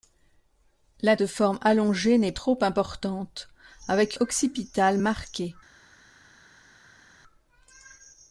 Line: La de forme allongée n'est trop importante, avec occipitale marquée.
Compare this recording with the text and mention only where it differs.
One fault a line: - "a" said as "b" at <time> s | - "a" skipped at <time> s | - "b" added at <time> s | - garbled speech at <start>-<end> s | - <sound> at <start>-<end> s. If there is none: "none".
none